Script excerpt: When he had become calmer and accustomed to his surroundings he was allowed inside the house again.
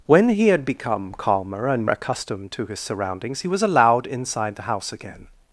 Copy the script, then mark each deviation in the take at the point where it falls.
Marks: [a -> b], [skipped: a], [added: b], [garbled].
When he had become calmer and accustomed to his surroundings he was allowed inside the house again.